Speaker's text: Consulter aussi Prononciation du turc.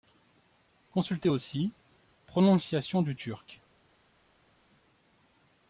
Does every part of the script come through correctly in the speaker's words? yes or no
yes